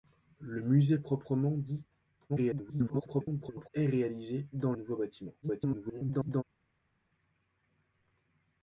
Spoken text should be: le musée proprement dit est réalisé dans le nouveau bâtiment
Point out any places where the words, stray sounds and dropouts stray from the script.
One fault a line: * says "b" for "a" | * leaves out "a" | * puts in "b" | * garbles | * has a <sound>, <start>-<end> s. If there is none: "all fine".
* garbles
* leaves out "le"
* garbles